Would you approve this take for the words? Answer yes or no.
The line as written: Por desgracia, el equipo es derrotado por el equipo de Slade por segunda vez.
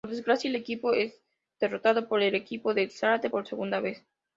yes